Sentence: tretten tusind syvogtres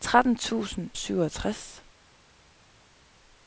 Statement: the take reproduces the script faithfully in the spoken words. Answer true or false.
true